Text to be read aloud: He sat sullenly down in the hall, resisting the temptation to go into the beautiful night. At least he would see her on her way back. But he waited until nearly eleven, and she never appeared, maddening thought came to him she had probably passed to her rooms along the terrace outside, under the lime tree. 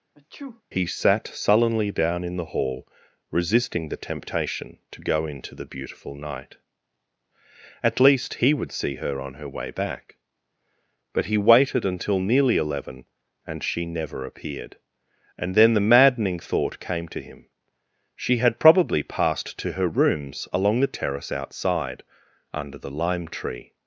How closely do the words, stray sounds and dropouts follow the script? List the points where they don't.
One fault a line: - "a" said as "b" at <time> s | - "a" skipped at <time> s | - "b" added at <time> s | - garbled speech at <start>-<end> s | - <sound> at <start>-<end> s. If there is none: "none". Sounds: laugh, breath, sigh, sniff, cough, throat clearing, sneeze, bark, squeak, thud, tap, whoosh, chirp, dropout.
- sneeze at 0.1-0.6 s
- "and then the" added at 15.4 s